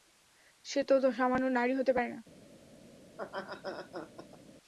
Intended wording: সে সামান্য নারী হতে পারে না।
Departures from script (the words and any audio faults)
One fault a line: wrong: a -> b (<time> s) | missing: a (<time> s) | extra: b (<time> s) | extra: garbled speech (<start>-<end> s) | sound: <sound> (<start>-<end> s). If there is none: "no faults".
extra: তো (0.9 s)
sound: laugh (3.1-4.4 s)